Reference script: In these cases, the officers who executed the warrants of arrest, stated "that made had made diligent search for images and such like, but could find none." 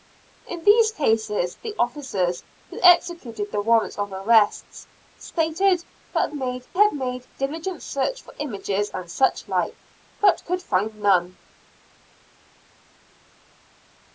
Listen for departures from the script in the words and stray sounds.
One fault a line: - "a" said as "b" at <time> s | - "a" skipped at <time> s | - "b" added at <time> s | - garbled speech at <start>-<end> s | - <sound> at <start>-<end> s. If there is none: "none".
none